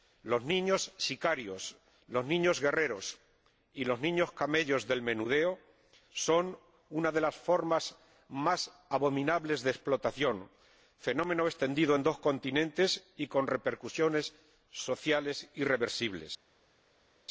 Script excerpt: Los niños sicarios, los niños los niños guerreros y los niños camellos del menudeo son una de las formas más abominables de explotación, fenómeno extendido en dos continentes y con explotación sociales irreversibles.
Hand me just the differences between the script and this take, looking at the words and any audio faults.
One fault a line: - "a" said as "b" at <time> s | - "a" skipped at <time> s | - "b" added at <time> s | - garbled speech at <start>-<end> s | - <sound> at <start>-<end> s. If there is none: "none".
- "los niños" skipped at 2.6 s
- "explotación" said as "repercusiones" at 13.5 s